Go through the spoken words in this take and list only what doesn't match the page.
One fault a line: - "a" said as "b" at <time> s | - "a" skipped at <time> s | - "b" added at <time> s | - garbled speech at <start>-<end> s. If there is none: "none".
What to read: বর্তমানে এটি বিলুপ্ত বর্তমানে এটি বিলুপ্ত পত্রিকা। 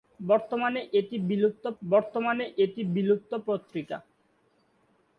none